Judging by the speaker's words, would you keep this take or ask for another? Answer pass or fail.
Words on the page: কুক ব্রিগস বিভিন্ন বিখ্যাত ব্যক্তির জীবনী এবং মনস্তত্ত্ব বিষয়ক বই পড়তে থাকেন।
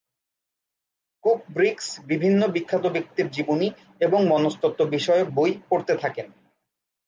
pass